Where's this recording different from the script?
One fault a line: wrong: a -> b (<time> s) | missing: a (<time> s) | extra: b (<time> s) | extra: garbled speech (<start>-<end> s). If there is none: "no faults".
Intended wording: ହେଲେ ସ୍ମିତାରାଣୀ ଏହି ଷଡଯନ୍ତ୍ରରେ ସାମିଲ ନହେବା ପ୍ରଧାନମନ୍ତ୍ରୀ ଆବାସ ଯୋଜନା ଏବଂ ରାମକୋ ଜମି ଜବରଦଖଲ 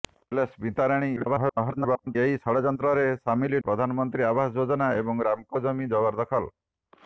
extra: garbled speech (1.2-2.2 s)
missing: ନହେବା (3.6 s)